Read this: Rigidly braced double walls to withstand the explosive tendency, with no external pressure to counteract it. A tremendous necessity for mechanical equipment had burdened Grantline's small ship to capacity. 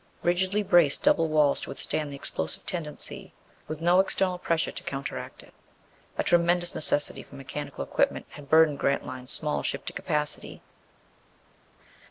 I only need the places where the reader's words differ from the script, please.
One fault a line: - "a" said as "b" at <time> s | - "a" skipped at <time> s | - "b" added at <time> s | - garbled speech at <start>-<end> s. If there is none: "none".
none